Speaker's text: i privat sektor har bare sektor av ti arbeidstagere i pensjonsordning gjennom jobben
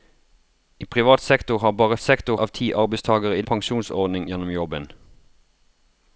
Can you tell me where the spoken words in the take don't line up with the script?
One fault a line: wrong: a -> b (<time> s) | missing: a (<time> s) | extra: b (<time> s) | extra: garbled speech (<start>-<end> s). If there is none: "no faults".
no faults